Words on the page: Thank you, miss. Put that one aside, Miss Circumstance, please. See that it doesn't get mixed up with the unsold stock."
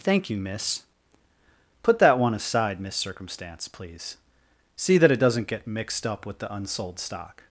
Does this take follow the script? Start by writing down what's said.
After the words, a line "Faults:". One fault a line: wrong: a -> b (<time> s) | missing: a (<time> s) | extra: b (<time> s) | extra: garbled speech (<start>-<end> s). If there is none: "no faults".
Thank you, miss. Put that one aside, Miss Circumstance, please. See that it doesn't get mixed up with the unsold stock."
Faults:
no faults